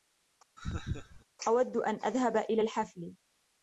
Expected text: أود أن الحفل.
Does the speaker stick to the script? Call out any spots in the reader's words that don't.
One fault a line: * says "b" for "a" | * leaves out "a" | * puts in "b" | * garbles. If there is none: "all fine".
* puts in "أذهب إلى"